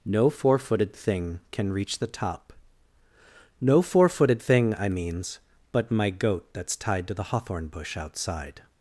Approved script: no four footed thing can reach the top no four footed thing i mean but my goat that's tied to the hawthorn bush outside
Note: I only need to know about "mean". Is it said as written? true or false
false